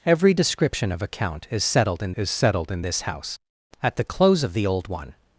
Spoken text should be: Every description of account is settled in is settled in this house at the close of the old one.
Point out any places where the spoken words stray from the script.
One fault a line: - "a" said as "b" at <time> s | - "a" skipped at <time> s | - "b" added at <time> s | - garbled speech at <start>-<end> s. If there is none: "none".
none